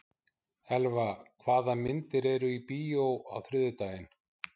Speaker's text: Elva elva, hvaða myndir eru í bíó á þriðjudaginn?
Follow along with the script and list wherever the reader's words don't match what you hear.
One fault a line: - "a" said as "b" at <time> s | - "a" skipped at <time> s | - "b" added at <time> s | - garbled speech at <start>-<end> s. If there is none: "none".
- "elva" skipped at 1.0 s